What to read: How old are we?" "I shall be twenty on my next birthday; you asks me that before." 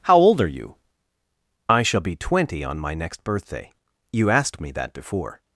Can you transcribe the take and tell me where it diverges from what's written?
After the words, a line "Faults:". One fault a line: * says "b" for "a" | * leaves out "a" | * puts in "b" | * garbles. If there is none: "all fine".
How old are you?" "I shall be twenty on my next birthday; you asked me that before."
Faults:
* says "you" for "we"
* says "asked" for "asks"